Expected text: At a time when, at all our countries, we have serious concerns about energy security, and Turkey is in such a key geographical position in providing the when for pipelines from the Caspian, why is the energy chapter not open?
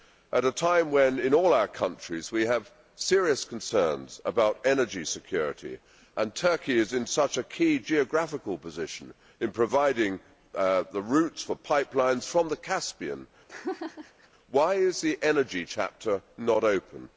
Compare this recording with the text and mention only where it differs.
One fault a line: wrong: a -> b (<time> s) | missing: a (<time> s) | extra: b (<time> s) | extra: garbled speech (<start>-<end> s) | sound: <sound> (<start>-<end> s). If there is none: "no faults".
wrong: at -> in (1.2 s)
wrong: when -> routes (11.0 s)
sound: laugh (13.5-14.3 s)